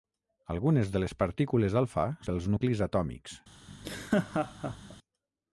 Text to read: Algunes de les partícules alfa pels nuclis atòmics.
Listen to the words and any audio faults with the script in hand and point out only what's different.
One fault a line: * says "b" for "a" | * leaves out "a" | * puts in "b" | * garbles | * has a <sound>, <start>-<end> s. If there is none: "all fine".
* has a laugh, 3.7-5.0 s